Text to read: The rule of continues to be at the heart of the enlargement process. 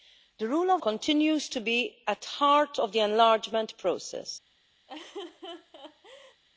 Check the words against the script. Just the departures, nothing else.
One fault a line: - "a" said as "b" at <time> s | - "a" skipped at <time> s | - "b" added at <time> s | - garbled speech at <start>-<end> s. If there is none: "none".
none